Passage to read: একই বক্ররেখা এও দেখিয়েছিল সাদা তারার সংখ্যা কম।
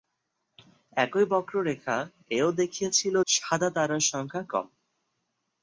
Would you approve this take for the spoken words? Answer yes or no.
yes